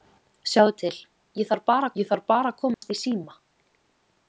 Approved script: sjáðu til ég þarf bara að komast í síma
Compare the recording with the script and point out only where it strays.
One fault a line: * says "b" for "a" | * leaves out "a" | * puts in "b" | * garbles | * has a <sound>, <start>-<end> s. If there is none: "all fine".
* puts in "ég þarf bara"
* has a dropout, 2.7-2.8 s